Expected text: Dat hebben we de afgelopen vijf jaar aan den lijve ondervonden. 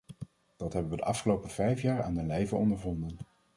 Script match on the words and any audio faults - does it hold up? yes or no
yes